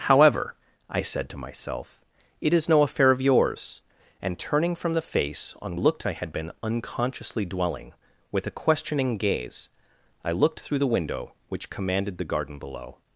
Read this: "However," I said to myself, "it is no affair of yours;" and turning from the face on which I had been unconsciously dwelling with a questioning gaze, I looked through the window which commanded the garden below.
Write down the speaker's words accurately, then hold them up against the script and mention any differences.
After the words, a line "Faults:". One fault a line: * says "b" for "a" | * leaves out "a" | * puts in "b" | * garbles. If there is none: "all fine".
"However," I said to myself, "it is no affair of yours;" and turning from the face on looked I had been unconsciously dwelling with a questioning gaze, I looked through the window which commanded the garden below.
Faults:
* says "looked" for "which"